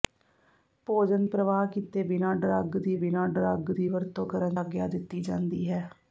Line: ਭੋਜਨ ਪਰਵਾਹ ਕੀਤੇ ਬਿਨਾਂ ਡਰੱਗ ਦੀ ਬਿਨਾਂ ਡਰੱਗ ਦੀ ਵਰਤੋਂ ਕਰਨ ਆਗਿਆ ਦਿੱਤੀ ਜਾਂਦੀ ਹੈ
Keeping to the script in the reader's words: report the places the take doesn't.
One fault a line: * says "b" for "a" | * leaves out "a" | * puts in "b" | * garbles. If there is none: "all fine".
all fine